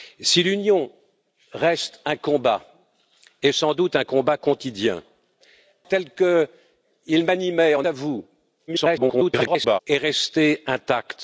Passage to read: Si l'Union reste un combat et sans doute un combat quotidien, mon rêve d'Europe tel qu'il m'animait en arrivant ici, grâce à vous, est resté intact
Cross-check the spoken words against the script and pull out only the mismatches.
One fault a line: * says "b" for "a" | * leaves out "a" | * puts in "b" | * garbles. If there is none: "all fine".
* leaves out "mon rêve d'Europe"
* leaves out "arrivant ici grâce"
* garbles